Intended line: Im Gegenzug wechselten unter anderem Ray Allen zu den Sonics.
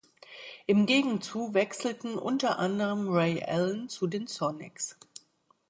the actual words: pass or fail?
pass